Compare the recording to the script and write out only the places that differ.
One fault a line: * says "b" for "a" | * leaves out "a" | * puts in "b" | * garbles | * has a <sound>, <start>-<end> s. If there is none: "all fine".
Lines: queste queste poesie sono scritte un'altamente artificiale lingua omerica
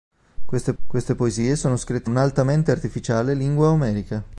all fine